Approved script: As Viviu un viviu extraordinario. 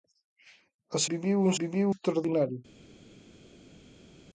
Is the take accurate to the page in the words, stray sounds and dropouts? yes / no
yes